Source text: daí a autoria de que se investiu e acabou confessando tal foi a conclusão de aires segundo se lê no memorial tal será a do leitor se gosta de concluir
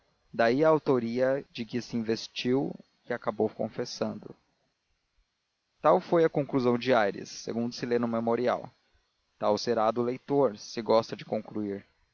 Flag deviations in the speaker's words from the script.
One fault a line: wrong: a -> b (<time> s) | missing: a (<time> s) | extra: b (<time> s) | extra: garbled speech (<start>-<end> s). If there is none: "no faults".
no faults